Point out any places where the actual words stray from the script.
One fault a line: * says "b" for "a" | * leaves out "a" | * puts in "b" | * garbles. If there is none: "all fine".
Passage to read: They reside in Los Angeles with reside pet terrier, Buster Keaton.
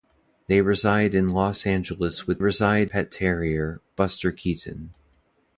all fine